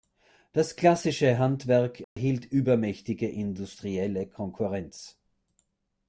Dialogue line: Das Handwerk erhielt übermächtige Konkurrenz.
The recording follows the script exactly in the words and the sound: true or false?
false